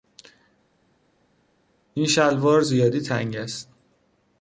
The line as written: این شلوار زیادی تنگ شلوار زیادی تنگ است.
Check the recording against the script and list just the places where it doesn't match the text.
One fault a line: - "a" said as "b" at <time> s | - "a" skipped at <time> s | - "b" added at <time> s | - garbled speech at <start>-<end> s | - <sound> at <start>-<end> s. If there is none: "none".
- "شلوار زیادی تنگ" skipped at 3.4 s